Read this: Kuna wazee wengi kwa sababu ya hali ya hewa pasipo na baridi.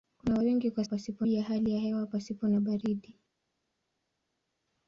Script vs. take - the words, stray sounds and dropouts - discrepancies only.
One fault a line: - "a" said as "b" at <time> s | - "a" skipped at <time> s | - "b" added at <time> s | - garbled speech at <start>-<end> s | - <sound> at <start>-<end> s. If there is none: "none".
- "wazee" skipped at 0.4 s
- "sababu" said as "pasipo" at 0.9 s